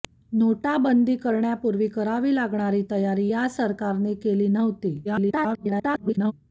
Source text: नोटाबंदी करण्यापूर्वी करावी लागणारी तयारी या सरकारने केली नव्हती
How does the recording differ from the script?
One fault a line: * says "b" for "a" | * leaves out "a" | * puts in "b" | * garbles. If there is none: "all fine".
* garbles